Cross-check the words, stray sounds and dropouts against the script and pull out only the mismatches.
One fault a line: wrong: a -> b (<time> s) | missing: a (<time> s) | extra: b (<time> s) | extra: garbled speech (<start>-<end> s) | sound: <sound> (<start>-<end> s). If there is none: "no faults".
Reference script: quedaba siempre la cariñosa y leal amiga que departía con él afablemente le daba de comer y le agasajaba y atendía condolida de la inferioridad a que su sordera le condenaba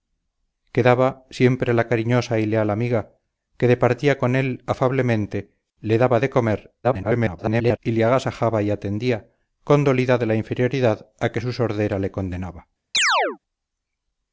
extra: garbled speech (6.8-7.8 s)
sound: chirp (12.9-13.4 s)